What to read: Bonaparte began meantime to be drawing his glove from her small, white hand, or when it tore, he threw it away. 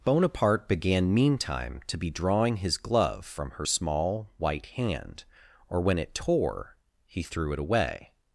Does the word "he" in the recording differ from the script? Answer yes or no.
no